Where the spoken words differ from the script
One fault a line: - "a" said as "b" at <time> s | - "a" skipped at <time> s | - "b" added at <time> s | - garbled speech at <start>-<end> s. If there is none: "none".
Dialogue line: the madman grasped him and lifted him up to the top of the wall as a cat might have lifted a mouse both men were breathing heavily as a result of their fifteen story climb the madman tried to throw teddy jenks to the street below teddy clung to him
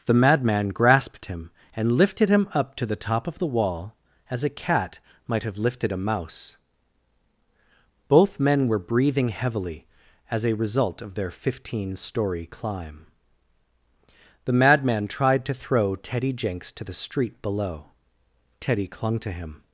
none